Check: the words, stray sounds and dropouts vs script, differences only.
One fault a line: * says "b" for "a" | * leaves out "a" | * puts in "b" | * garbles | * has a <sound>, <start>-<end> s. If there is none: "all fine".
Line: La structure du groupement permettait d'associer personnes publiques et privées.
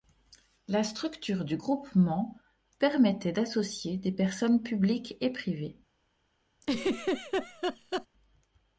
* puts in "des"
* has a laugh, 6.6-8.1 s